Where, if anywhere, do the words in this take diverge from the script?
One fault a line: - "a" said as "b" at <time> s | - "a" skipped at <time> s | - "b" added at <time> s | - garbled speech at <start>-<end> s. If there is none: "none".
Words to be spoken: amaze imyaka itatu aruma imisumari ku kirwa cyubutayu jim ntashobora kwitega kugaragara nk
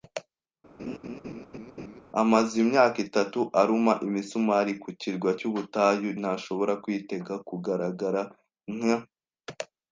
- "jim" skipped at 6.1 s